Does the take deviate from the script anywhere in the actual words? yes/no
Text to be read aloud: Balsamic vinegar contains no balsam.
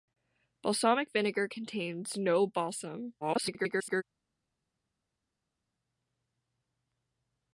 yes